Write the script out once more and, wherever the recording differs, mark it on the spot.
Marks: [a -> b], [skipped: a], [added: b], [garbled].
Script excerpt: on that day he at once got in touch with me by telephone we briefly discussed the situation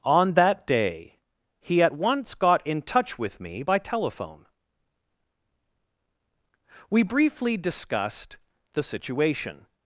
on that day he at once got in touch with me by telephone we briefly discussed the situation